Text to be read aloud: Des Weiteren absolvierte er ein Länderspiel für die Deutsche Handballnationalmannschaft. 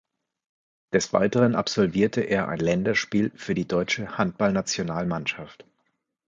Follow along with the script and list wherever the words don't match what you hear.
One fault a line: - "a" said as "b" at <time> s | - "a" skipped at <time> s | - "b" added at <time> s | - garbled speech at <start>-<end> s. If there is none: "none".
none